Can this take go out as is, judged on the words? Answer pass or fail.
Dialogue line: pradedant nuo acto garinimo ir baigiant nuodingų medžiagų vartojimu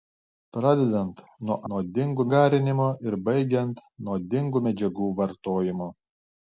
fail